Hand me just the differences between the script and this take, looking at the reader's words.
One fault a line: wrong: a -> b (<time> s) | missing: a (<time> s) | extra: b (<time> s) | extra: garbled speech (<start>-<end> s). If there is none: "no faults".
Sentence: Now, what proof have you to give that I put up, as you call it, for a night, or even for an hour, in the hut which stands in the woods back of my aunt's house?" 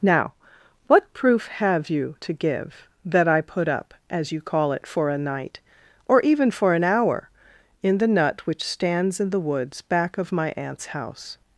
wrong: hut -> nut (8.1 s)